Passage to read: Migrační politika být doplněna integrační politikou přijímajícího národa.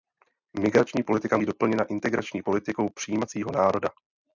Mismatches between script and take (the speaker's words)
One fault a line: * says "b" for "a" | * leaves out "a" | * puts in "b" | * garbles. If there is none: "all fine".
all fine